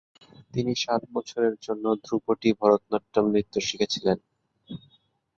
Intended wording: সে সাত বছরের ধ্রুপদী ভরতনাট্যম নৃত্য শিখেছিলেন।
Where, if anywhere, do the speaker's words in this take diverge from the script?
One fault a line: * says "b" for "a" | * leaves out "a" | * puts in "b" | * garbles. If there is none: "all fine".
* says "তিনি" for "সে"
* puts in "জন্য"